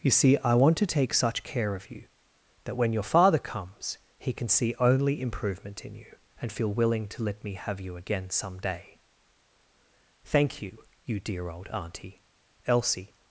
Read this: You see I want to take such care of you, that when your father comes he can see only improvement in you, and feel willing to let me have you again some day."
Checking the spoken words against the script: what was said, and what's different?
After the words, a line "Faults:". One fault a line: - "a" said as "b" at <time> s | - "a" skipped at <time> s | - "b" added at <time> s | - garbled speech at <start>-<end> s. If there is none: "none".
You see I want to take such care of you, that when your father comes he can see only improvement in you, and feel willing to let me have you again some day." "Thank you, you dear old auntie!" Elsie
Faults:
- "Thank you you dear old auntie Elsie" added at 10.2 s